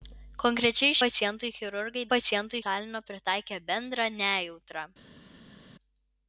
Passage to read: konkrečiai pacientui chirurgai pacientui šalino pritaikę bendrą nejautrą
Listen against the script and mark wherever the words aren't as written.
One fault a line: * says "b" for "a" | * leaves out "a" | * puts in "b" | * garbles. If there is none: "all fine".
all fine